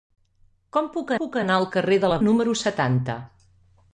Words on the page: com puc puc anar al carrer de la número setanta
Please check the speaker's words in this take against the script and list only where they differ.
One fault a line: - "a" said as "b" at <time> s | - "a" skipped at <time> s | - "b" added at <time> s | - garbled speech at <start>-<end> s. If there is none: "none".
none